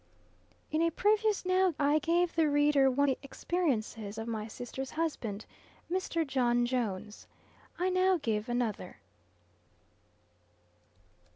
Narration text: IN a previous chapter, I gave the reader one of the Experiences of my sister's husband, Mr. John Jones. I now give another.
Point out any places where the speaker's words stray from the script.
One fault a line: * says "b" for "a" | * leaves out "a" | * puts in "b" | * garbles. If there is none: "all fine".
* says "now" for "chapter"
* leaves out "of"